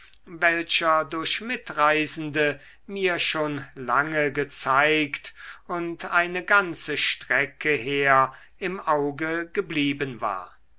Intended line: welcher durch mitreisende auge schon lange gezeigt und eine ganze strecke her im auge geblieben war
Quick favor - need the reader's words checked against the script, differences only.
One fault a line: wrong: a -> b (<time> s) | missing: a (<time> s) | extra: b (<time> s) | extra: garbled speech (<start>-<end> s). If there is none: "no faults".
wrong: auge -> mir (2.9 s)